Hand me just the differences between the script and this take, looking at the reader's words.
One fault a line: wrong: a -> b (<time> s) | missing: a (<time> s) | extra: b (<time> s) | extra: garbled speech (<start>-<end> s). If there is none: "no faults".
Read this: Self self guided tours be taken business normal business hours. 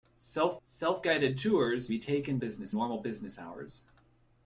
no faults